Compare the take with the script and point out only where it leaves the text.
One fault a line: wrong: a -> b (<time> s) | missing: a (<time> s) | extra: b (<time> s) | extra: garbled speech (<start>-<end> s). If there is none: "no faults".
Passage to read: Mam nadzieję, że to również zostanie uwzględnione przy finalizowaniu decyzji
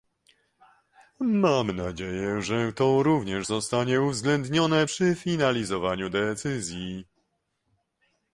no faults